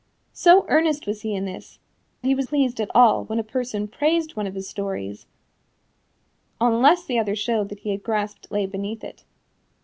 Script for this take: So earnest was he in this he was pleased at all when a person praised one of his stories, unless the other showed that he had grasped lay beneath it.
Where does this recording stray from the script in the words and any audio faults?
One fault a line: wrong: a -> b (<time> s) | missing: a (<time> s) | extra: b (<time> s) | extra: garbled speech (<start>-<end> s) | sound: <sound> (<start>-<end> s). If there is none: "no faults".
no faults